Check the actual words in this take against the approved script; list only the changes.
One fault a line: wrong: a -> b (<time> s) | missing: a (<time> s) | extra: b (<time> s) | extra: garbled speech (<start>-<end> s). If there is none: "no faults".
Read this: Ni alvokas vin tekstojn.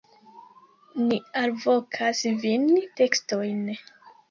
no faults